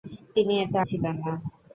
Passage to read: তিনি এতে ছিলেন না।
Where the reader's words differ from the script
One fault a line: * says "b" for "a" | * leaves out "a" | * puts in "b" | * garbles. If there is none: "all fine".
all fine